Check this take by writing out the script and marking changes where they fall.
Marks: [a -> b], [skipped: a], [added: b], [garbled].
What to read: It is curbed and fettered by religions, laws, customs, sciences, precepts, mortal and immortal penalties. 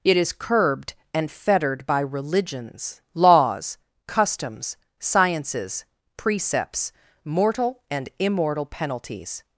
It is curbed and fettered by religions, laws, customs, sciences, precepts, mortal and immortal penalties.